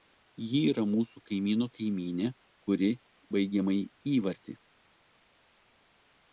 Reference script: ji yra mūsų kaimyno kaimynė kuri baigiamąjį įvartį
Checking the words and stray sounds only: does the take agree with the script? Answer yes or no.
yes